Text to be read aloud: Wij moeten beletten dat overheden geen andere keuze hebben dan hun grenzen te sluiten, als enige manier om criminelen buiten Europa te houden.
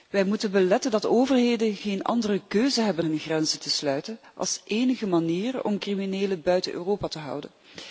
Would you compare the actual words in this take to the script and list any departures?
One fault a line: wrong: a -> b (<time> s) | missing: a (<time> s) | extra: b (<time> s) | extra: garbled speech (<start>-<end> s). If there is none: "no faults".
missing: dan (3.0 s)